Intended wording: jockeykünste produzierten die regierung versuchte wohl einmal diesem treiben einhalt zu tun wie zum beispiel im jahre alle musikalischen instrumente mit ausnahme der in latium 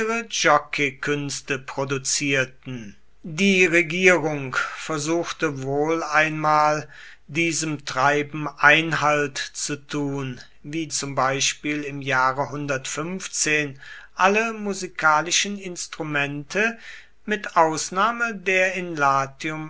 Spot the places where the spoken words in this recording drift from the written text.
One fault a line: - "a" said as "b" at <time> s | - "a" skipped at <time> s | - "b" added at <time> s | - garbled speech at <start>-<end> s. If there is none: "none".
none